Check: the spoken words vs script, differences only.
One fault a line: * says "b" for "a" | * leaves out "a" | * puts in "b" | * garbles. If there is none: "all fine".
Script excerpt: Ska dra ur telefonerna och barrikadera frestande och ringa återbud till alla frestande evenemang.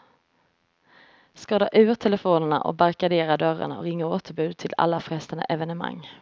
* says "dörrarna" for "frestande"